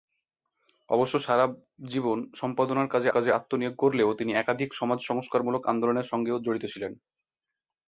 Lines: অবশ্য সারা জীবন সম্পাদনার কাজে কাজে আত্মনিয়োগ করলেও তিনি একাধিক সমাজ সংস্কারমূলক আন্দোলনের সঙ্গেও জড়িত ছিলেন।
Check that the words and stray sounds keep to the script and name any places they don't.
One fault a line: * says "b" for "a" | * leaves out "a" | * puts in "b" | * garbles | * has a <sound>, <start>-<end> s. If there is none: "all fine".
all fine